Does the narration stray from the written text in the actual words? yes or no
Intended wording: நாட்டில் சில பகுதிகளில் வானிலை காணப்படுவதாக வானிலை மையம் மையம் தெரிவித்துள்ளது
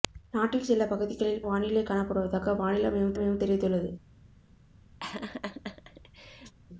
no